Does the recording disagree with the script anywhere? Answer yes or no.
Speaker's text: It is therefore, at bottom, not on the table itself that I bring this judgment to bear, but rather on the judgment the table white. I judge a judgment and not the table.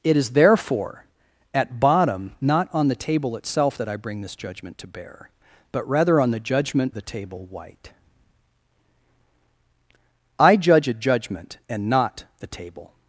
no